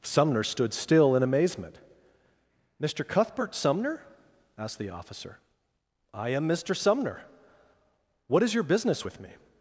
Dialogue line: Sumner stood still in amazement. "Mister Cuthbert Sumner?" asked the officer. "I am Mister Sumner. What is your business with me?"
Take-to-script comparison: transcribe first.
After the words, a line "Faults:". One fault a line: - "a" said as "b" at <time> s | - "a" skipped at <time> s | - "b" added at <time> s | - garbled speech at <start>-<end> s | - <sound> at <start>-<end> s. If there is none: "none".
Sumner stood still in amazement. "Mister Cuthbert Sumner?" asked the officer. "I am Mister Sumner. What is your business with me?"
Faults:
none